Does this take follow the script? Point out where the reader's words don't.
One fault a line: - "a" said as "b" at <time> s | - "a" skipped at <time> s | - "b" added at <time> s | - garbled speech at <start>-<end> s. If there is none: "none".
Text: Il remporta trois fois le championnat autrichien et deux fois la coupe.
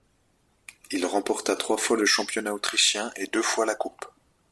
none